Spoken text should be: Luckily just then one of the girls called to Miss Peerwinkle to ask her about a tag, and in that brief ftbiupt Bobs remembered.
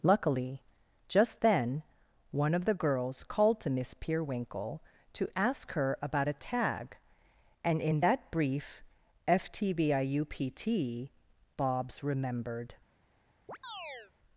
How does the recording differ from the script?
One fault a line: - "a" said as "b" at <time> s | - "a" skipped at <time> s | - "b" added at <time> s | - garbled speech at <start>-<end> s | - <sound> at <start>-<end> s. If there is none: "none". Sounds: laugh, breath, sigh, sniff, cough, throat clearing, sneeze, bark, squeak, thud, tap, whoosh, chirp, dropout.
- chirp at 13.5-14.1 s